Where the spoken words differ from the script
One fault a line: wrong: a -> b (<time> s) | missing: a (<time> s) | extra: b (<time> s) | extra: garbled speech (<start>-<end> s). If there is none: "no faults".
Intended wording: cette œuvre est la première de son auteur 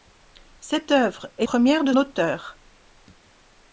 missing: la (1.4 s)
missing: son (1.9 s)